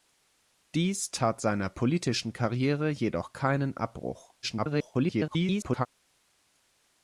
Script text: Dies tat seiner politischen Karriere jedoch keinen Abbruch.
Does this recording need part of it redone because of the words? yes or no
yes